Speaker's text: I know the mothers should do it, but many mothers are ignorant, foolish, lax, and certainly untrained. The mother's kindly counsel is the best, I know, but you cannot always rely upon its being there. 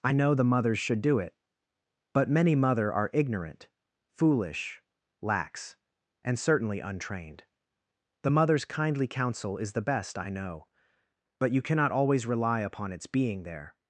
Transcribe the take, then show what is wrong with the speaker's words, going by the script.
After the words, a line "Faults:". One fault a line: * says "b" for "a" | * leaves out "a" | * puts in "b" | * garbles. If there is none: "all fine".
I know the mothers should do it, but many mother are ignorant, foolish, lax, and certainly untrained. The mother's kindly counsel is the best, I know, but you cannot always rely upon its being there.
Faults:
* says "mother" for "mothers"